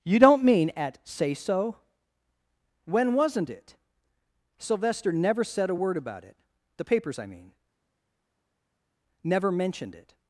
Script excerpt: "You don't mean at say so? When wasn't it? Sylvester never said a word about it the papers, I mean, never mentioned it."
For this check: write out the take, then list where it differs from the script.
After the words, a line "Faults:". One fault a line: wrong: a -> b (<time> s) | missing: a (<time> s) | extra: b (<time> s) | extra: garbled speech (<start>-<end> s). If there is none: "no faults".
"You don't mean at say so? When wasn't it? Sylvester never said a word about it the papers, I mean, never mentioned it."
Faults:
no faults